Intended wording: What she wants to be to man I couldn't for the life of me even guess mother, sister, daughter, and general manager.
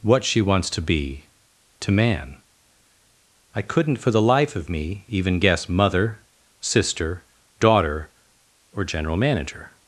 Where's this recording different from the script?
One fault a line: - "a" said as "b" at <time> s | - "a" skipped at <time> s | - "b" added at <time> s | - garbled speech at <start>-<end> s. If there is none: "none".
- "and" said as "or" at 8.7 s